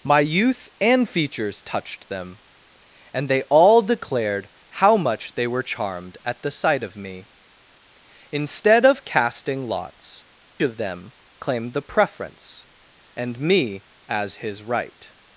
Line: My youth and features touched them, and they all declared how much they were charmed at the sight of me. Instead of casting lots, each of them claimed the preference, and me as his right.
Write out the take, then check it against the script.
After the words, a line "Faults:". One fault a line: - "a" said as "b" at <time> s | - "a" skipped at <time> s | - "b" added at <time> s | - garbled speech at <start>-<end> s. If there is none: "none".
My youth and features touched them, and they all declared how much they were charmed at the sight of me. Instead of casting lots, of them claimed the preference, and me as his right.
Faults:
- "each" skipped at 10.2 s